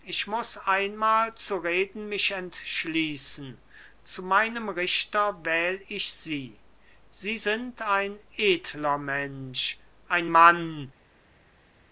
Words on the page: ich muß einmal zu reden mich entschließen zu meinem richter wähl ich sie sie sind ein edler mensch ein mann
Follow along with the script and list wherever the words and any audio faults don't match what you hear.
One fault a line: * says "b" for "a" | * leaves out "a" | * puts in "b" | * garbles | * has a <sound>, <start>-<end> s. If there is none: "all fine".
all fine